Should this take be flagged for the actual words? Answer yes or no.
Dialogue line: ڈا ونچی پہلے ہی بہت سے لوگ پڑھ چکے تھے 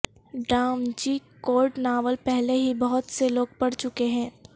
yes